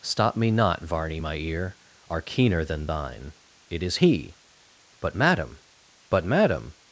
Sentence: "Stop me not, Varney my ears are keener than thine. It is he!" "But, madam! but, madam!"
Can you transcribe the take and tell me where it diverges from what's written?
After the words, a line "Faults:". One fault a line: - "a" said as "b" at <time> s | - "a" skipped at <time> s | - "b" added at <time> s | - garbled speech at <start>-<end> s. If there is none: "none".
"Stop me not, Varney my ear are keener than thine. It is he!" "But, madam! but, madam!"
Faults:
- "ears" said as "ear" at 1.4 s